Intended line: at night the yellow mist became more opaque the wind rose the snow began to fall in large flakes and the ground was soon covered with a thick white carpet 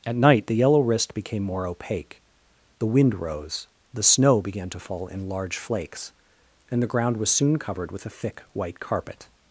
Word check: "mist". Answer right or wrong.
wrong